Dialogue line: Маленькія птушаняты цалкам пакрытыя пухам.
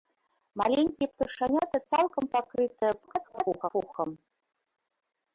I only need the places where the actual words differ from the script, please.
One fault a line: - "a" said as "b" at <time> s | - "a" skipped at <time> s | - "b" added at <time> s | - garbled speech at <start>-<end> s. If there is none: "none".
- garbled speech at 3.0-3.7 s